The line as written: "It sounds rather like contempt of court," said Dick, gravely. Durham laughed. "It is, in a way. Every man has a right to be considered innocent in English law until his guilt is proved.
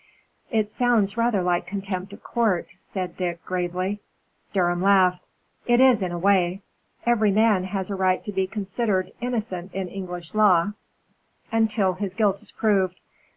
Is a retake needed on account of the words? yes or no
no